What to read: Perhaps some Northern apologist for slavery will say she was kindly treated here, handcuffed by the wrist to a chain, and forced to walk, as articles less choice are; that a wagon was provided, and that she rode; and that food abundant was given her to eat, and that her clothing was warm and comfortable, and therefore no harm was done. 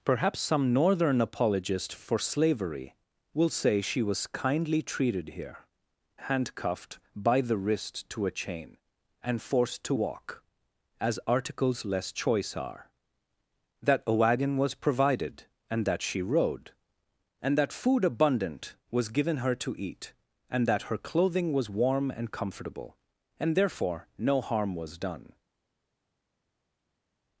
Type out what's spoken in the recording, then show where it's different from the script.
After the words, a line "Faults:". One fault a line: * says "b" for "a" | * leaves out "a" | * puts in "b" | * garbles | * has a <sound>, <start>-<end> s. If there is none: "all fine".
Perhaps some Northern apologist for slavery will say she was kindly treated here, handcuffed by the wrist to a chain, and forced to walk, as articles less choice are; that a wagon was provided, and that she rode; and that food abundant was given her to eat, and that her clothing was warm and comfortable, and therefore no harm was done.
Faults:
all fine